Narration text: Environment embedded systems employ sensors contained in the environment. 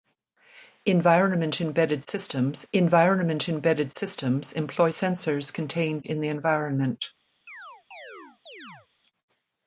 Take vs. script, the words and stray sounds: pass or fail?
fail